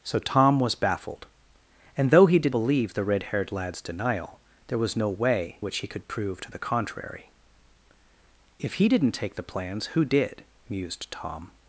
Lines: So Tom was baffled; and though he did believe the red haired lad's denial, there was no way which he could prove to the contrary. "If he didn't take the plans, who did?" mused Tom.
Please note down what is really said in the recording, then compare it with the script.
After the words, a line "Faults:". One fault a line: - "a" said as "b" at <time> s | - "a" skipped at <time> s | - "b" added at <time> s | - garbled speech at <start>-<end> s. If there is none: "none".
So Tom was baffled; and though he did believe the red haired lad's denial, there was no way which he could prove to the contrary. "If he didn't take the plans, who did?" mused Tom.
Faults:
none